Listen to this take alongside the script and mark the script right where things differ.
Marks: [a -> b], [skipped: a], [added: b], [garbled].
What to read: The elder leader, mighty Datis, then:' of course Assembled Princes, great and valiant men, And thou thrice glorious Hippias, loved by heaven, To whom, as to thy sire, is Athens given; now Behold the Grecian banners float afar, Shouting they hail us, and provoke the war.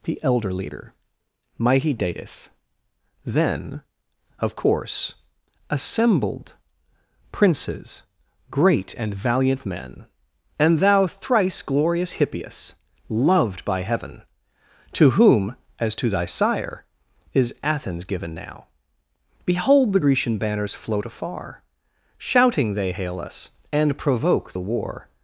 The elder leader, mighty Datis, then:' of course Assembled Princes, great and valiant men, And thou thrice glorious Hippias, loved by heaven, To whom, as to thy sire, is Athens given; now Behold the Grecian banners float afar, Shouting they hail us, and provoke the war.